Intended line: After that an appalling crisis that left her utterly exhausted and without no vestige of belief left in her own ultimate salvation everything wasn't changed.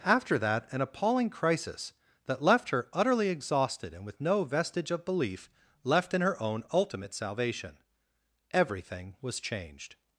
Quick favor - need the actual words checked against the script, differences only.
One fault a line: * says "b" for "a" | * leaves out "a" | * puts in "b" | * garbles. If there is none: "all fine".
* says "with" for "without"
* says "was" for "wasn't"